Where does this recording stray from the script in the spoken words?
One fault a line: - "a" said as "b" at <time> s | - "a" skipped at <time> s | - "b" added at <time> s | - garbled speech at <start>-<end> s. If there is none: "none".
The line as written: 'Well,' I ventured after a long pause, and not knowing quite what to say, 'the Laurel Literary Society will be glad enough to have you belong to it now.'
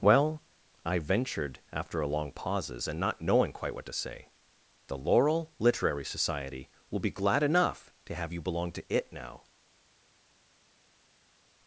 - "pause" said as "pauses" at 2.3 s